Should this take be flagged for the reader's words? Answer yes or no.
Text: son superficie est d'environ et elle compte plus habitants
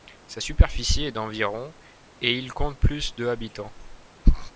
yes